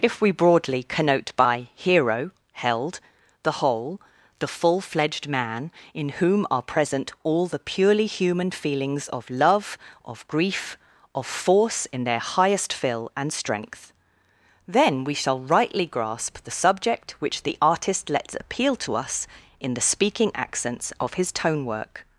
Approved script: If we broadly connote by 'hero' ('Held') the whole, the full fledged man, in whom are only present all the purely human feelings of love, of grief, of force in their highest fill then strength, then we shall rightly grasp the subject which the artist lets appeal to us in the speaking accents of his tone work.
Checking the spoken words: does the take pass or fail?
fail